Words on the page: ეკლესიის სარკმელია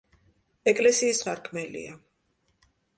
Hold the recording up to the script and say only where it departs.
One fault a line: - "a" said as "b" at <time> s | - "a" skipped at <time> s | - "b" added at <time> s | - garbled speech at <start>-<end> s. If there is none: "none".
none